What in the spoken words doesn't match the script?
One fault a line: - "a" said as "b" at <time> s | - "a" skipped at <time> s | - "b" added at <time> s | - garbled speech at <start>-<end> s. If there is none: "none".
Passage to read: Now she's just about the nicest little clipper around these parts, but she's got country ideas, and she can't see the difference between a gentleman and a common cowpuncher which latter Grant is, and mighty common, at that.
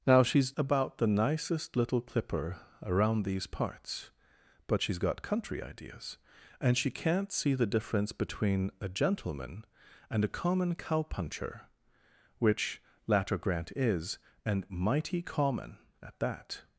- "just" skipped at 0.5 s